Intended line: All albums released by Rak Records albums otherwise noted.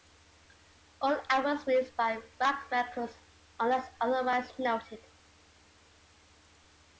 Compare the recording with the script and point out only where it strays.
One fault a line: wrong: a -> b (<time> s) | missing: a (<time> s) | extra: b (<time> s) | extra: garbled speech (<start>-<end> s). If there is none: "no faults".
wrong: albums -> unless (3.6 s)